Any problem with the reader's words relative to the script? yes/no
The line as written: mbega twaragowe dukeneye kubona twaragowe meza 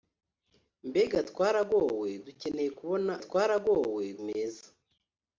no